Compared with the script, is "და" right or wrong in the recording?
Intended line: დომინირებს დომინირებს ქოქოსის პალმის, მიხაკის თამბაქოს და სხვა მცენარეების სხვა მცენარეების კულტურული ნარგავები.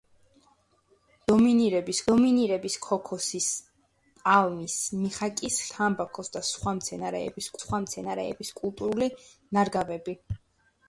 right